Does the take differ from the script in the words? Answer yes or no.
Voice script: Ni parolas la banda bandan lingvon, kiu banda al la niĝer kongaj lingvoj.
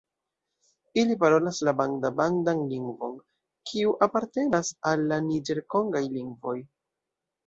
yes